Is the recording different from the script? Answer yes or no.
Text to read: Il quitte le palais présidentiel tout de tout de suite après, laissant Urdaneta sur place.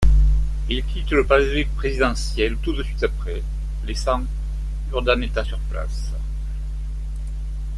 yes